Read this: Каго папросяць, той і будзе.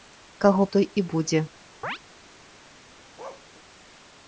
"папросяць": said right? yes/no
no